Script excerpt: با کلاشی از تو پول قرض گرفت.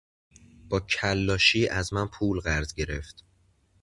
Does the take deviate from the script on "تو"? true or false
true